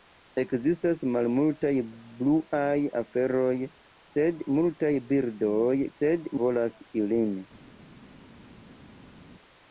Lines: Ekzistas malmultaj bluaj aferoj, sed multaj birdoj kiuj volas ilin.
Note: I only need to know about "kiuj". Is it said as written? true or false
false